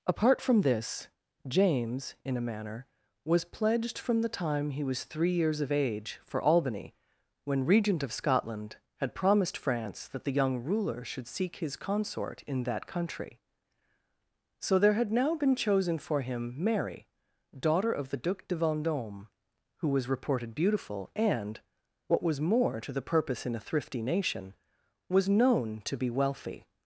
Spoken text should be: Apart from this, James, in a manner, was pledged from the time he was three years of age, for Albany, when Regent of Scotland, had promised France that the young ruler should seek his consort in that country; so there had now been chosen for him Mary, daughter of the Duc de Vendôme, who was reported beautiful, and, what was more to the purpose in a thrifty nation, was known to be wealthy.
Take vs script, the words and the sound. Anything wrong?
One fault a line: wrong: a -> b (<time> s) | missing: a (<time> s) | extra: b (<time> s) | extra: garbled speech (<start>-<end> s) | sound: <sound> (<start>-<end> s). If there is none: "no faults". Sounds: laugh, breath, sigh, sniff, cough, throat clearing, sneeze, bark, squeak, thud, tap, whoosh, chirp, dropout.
no faults